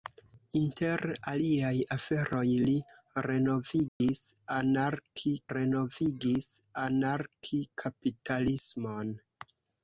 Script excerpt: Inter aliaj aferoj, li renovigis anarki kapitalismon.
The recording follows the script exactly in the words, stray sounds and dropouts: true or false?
false